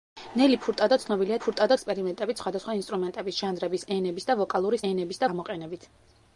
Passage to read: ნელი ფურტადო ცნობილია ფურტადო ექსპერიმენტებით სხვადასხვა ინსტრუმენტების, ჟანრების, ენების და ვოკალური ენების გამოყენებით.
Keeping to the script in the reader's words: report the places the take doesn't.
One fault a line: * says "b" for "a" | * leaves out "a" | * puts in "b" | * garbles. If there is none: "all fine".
all fine